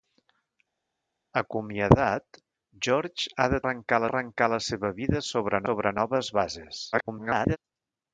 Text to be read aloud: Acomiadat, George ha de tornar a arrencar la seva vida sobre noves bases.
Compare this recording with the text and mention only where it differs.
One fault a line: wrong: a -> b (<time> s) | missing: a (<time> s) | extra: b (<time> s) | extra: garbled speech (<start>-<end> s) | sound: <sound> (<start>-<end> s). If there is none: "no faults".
wrong: tornar -> arrencar (3.6 s)
extra: sobre (5.7 s)
extra: garbled speech (6.9-7.6 s)